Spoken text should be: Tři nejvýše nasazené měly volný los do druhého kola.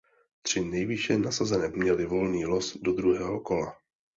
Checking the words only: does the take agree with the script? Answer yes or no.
yes